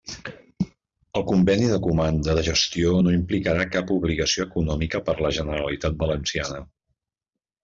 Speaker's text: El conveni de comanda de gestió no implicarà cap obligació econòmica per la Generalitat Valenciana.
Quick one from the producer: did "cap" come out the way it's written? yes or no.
yes